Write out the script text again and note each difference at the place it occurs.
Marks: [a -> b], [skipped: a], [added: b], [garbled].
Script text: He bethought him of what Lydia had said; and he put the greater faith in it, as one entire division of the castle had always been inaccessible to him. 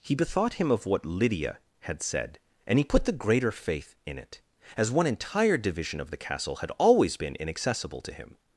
He bethought him of what Lydia had said; and he put the greater faith in it, as one entire division of the castle had always been inaccessible to him.